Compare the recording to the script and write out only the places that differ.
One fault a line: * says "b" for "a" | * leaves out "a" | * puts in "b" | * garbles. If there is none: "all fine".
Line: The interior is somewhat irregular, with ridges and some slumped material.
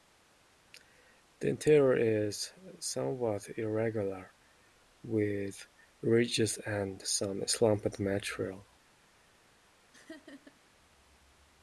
all fine